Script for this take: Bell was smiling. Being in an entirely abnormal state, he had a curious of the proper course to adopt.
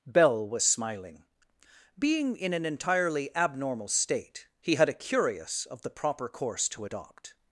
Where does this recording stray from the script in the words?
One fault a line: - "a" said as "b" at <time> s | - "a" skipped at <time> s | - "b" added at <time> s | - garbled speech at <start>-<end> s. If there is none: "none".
none